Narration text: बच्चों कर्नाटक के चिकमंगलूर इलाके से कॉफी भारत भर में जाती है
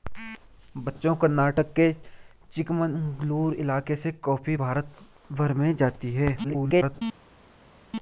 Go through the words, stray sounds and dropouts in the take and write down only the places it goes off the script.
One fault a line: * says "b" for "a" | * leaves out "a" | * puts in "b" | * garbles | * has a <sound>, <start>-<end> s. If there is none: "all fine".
* garbles